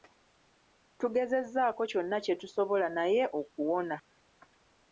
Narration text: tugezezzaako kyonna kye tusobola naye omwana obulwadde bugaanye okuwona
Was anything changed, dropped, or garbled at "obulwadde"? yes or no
yes